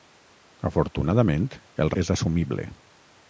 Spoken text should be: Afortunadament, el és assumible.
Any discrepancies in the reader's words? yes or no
no